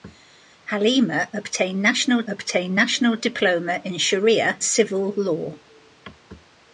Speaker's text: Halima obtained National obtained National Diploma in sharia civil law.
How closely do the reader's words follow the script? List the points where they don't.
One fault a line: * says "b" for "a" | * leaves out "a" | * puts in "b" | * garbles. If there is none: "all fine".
all fine